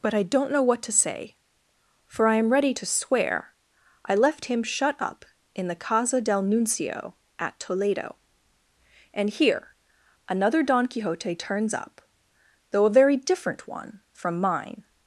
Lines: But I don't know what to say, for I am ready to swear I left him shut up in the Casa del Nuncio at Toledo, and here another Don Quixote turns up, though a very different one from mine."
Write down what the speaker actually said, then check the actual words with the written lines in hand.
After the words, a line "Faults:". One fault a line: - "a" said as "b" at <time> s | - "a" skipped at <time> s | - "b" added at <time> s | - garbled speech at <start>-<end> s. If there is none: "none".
But I don't know what to say, for I am ready to swear I left him shut up in the Casa del Nuncio at Toledo, and here another Don Quixote turns up, though a very different one from mine."
Faults:
none